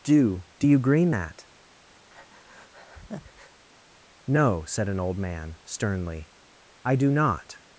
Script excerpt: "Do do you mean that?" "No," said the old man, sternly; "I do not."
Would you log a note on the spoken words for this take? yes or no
yes